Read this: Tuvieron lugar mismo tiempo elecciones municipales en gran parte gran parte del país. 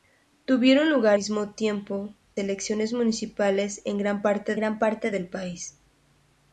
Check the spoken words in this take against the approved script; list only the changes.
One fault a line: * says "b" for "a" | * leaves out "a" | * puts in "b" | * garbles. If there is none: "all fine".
all fine